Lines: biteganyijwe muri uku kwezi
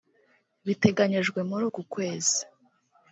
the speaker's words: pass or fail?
pass